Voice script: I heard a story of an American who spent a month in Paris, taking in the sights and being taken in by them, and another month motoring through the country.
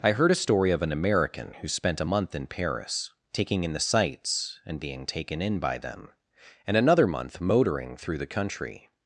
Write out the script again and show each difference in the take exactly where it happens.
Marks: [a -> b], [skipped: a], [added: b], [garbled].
I heard a story of an American who spent a month in Paris, taking in the sights and being taken in by them, and another month motoring through the country.